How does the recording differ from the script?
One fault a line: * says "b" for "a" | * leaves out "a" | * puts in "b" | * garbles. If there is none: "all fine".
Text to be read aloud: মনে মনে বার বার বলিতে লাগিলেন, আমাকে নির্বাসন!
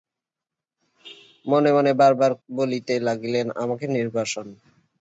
all fine